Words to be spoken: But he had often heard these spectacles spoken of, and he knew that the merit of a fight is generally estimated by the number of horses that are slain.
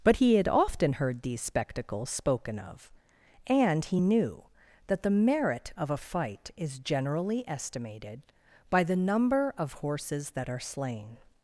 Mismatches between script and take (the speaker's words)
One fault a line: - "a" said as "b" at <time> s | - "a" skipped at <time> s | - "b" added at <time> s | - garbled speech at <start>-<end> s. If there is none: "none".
none